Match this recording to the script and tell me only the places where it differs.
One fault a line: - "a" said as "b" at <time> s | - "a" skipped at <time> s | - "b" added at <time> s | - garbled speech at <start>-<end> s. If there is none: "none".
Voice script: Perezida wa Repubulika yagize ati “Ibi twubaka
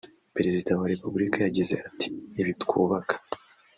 none